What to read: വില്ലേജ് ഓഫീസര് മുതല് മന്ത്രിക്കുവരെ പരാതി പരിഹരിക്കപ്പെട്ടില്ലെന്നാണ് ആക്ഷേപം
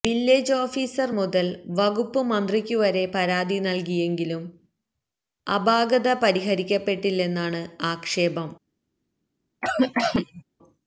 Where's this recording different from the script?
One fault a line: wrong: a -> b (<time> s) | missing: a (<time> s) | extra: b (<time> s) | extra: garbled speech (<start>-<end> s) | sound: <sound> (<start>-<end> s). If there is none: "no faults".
extra: വകുപ്പ് (1.8 s)
extra: നല്കിയെങ്കിലും അപാകത (3.6 s)
sound: cough (9.6-10.4 s)